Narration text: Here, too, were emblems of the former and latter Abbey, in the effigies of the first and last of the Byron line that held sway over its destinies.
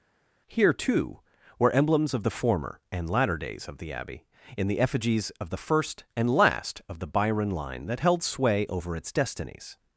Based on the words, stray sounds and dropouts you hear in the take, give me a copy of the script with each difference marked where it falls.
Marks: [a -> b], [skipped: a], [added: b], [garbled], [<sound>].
Here, too, were emblems of the former and latter [added: days of the] Abbey, in the effigies of the first and last of the Byron line that held sway over its destinies.